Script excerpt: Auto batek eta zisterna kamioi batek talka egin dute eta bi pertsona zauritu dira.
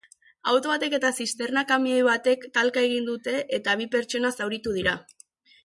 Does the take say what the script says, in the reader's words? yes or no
yes